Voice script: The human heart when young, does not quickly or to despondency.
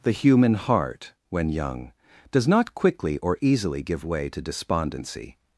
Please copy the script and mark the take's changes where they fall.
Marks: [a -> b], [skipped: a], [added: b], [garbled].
The human heart when young, does not quickly or [added: easily give way] to despondency.